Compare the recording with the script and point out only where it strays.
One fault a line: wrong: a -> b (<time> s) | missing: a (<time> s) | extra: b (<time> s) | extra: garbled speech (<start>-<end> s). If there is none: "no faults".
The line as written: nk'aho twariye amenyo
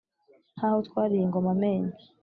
extra: ingoma (1.2 s)